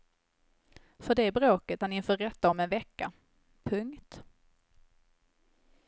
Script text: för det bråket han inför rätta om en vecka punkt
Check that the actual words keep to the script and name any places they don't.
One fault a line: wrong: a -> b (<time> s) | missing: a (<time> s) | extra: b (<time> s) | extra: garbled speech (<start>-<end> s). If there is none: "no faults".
no faults